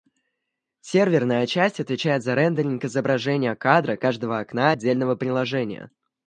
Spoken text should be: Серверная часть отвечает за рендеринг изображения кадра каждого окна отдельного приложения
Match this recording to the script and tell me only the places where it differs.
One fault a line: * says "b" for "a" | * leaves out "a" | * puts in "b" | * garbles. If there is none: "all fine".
all fine